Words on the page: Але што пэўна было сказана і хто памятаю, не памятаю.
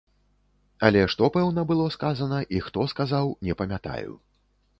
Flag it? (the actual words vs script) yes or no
yes